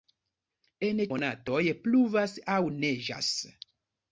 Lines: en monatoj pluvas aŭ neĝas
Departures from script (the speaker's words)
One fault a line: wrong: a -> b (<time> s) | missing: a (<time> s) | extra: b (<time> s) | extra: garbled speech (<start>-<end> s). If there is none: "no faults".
no faults